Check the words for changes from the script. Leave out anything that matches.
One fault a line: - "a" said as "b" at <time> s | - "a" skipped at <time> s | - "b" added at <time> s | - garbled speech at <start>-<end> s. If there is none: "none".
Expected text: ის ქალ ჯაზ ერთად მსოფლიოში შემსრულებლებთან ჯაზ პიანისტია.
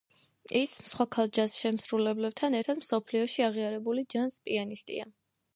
- "სხვა" added at 0.9 s
- "შემსრულებლებთან" added at 1.6 s
- "შემსრულებლებთან" said as "აღიარებული" at 3.5 s